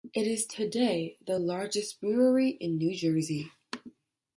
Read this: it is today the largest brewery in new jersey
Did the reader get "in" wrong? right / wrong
right